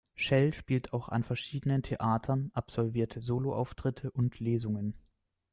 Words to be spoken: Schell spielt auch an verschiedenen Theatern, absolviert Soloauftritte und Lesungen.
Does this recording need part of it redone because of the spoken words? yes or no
no